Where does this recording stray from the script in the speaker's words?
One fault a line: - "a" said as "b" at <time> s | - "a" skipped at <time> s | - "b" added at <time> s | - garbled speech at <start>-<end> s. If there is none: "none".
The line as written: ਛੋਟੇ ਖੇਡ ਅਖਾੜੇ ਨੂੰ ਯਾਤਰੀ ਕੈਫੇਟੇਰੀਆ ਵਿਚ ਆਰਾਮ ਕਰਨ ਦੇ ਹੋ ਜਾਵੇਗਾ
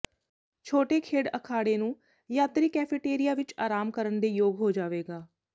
- "ਯੋਗ" added at 4.3 s